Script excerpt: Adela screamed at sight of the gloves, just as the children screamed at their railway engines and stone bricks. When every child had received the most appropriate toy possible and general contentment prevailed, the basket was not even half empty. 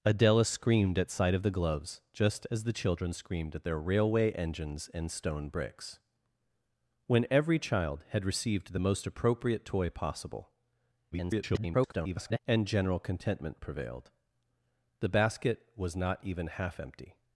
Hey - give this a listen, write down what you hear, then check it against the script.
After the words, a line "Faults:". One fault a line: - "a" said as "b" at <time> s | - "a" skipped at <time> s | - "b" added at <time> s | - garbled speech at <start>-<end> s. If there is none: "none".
Adela screamed at sight of the gloves, just as the children screamed at their railway engines and stone bricks. When every child had received the most appropriate toy possible [garbled] and general contentment prevailed, the basket was not even half empty.
Faults:
- garbled speech at 11.1-12.4 s